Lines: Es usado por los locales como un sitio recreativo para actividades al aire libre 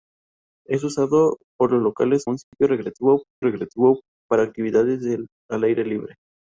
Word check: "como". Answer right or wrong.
wrong